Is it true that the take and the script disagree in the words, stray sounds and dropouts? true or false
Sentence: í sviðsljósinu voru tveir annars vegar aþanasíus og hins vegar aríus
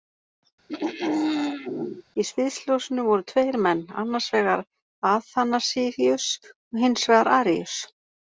true